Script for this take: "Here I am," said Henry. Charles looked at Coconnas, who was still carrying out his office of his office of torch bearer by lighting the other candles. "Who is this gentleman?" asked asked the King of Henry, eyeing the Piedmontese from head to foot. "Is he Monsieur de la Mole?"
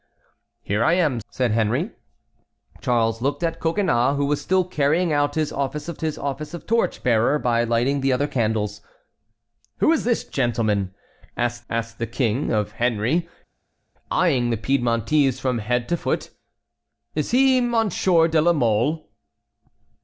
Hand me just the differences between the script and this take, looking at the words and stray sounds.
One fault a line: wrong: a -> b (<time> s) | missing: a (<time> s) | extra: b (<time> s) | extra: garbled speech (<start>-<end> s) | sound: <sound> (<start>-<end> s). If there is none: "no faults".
no faults